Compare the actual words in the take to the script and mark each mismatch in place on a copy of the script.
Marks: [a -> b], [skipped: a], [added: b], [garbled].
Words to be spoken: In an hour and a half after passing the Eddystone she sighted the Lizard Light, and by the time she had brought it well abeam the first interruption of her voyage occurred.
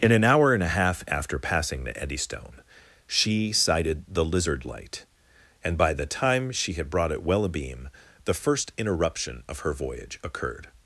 In an hour and a half after passing the Eddystone she sighted the Lizard Light, and by the time she had brought it well abeam the first interruption of her voyage occurred.